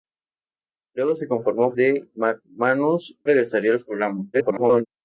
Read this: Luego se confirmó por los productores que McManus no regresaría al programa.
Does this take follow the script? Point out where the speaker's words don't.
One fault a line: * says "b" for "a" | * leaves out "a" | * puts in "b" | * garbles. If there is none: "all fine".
* leaves out "por los productores"
* leaves out "no"
* garbles